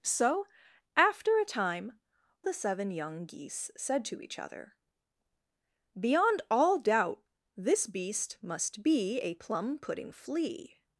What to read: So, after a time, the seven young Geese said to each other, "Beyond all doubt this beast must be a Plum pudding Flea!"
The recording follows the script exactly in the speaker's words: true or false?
true